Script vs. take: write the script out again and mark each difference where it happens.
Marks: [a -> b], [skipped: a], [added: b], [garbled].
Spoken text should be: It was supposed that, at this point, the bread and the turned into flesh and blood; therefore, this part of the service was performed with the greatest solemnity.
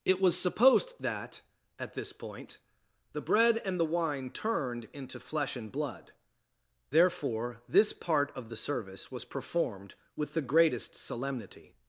It was supposed that, at this point, the bread and the [added: wine] turned into flesh and blood; therefore, this part of the service was performed with the greatest solemnity.